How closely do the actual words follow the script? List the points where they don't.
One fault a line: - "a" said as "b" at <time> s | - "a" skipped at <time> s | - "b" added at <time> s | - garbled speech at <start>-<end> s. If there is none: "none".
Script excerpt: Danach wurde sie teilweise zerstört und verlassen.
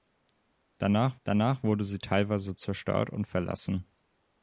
- "danach" added at 1.2 s